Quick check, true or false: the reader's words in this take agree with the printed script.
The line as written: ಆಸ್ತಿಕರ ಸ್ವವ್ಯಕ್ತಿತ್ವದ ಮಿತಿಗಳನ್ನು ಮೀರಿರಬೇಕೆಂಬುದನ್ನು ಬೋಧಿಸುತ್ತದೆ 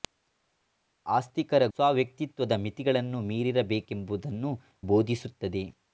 true